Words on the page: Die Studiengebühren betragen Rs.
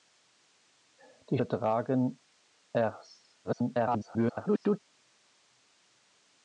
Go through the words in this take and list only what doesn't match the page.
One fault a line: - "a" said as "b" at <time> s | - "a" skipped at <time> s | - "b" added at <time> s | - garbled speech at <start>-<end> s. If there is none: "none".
- "Studiengebühren" skipped at 1.4 s
- garbled speech at 3.4-4.8 s